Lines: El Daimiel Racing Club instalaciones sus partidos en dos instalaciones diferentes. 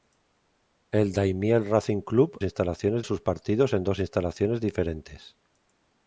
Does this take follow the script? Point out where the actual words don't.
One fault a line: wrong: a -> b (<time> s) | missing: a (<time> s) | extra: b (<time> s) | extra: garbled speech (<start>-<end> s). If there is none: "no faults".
no faults